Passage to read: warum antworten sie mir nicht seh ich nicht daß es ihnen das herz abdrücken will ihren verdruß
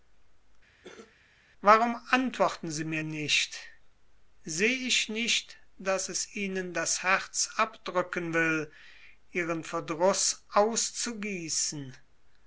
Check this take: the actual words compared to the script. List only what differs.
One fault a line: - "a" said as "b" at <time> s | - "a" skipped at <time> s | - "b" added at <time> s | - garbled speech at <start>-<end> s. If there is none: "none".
none